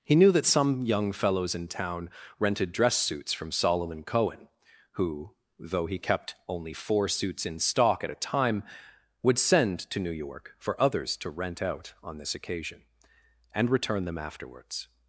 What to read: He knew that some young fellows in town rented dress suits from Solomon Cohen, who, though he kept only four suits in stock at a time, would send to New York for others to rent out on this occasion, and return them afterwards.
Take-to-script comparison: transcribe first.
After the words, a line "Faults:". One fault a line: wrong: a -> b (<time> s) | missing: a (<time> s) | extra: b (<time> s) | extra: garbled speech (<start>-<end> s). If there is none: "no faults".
He knew that some young fellows in town rented dress suits from Solomon Cohen, who, though he kept only four suits in stock at a time, would send to New York for others to rent out on this occasion, and return them afterwards.
Faults:
no faults